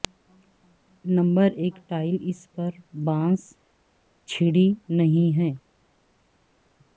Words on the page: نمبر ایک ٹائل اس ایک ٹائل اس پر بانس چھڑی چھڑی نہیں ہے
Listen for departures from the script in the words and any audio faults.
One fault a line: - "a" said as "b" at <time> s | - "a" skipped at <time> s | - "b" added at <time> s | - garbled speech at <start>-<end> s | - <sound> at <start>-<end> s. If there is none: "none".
- "ایک ٹائل اس" skipped at 2.4 s
- "چھڑی" skipped at 4.7 s